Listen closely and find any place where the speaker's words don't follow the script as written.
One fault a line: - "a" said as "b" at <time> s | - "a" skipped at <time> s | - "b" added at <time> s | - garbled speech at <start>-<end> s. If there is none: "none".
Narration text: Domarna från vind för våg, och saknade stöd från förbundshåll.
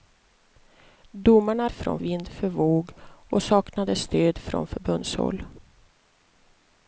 none